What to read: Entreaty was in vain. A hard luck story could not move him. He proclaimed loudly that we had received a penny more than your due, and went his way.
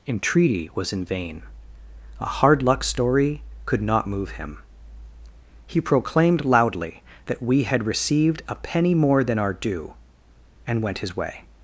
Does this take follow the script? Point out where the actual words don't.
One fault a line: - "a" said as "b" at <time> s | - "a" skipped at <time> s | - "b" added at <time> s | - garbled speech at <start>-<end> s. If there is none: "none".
- "your" said as "our" at 9.4 s